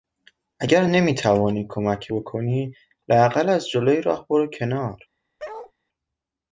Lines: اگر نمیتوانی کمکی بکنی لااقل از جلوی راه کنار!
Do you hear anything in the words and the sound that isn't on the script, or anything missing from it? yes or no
yes